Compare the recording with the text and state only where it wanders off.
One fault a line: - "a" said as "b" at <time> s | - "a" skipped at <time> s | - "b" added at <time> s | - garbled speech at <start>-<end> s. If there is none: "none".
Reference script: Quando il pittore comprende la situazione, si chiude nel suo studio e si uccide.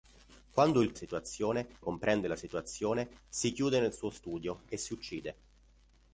- "pittore" said as "situazione" at 0.9 s